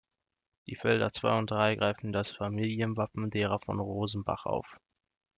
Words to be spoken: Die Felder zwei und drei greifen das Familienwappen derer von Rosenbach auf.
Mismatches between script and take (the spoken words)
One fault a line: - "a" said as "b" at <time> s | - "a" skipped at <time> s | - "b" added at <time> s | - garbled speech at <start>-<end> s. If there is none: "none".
none